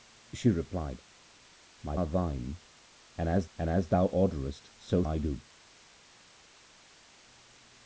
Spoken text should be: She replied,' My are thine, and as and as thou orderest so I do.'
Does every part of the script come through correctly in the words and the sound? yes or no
yes